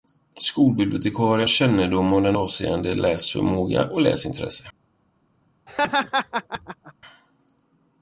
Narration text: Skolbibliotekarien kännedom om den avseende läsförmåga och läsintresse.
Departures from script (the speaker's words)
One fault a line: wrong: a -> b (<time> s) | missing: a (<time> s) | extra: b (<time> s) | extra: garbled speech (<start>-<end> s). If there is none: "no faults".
no faults